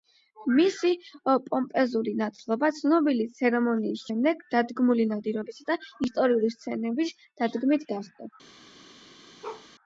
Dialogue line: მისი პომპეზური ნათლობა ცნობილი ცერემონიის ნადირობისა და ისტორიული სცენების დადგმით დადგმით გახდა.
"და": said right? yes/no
yes